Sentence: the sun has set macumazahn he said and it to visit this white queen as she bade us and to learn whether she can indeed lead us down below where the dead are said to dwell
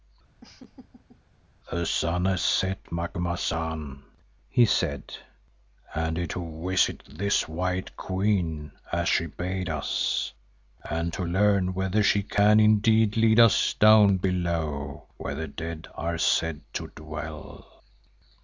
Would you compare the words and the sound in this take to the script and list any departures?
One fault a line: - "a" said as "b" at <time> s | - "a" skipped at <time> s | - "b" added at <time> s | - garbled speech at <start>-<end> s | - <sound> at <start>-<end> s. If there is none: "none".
- laugh at 0.4-1.2 s